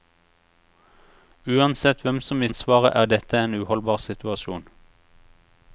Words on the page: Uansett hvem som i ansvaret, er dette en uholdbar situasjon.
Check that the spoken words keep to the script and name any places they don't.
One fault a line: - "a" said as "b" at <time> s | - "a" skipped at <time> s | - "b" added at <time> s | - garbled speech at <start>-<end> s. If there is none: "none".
none